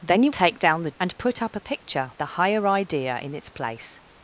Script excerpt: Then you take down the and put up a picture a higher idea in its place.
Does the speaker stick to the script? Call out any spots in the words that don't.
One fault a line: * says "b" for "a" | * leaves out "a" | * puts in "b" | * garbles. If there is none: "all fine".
all fine